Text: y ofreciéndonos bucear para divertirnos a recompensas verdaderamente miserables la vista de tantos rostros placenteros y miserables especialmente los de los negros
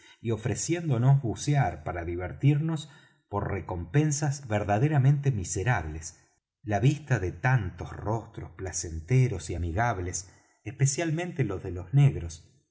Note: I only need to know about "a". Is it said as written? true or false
false